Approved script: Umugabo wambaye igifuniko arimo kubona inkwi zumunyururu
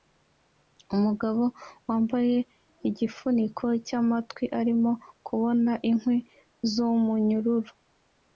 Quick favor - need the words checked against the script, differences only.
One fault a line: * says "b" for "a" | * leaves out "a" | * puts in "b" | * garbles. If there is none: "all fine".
* puts in "cyamatwi"